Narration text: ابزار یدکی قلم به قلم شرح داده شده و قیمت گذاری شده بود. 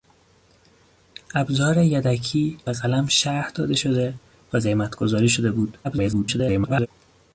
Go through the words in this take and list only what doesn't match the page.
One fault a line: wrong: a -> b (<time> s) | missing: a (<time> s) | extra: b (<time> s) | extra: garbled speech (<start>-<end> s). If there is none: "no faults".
missing: قلم (2.6 s)
extra: garbled speech (5.8-6.9 s)